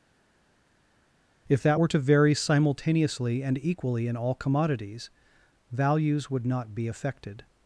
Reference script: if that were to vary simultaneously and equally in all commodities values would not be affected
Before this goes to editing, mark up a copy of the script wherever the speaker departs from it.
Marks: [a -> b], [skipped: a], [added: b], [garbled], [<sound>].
if that were to vary simultaneously and equally in all commodities values would not be affected